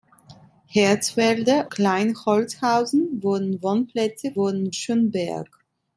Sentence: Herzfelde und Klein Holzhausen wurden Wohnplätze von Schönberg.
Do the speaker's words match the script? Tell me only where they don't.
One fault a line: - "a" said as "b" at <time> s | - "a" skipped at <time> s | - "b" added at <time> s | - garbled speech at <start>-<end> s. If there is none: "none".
- "und" skipped at 1.7 s
- "von" said as "wurden" at 4.3 s